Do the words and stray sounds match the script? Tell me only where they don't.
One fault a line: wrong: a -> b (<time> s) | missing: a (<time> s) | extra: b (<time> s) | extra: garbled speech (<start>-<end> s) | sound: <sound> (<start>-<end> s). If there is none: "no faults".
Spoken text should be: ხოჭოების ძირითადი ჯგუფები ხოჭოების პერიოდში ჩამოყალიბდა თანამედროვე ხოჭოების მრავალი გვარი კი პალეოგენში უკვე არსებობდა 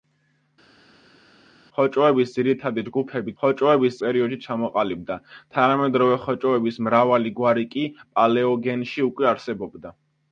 no faults